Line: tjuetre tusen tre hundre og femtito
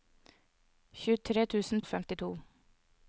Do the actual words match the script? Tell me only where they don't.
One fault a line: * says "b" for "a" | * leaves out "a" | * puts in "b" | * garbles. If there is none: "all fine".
* leaves out "tre hundre"